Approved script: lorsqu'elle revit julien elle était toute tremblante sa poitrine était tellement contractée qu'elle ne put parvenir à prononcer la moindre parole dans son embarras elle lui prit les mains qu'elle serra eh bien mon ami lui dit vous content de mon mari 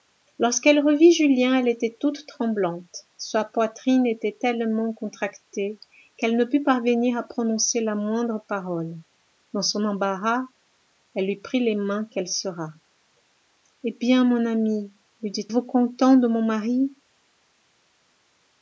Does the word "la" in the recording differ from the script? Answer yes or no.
no